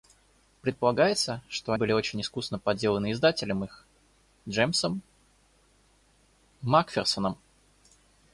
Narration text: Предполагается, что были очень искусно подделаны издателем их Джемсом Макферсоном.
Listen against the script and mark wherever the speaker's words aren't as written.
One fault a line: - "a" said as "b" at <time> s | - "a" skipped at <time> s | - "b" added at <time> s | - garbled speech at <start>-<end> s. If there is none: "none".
none